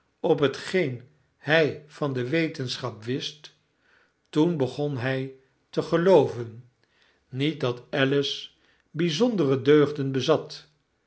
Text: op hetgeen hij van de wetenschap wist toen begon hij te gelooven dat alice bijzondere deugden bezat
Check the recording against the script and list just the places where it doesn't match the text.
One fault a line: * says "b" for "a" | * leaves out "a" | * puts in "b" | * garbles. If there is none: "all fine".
* puts in "niet"